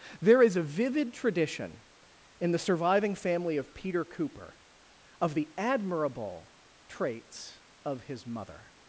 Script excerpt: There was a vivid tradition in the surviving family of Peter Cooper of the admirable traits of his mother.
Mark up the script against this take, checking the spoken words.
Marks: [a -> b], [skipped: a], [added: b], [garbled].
There [was -> is] a vivid tradition in the surviving family of Peter Cooper of the admirable traits of his mother.